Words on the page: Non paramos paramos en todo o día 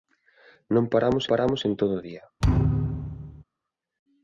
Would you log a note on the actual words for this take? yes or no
no